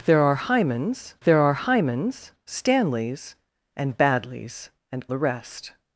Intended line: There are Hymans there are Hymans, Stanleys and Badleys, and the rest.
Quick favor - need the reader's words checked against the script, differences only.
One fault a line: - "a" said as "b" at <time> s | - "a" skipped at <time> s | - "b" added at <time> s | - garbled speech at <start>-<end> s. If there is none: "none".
none